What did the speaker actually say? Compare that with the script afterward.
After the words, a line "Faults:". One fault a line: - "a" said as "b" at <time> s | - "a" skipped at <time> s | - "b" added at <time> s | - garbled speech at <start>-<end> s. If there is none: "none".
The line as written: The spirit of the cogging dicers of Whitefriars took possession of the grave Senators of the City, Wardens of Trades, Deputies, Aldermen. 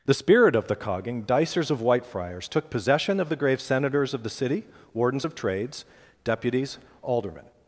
The spirit of the cogging dicers of Whitefriars took possession of the grave Senators of the City, Wardens of Trades, Deputies, Aldermen.
Faults:
none